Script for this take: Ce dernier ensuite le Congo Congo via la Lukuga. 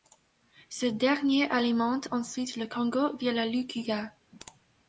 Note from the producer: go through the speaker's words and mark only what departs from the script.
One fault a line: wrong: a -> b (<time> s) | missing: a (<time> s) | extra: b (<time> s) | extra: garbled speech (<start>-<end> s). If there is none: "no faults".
extra: alimente (1.5 s)
missing: Congo (3.1 s)